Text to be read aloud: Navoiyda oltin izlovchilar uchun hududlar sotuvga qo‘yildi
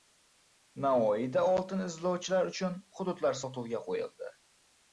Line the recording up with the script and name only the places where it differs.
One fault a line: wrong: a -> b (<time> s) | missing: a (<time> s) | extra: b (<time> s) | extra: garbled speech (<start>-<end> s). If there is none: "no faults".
no faults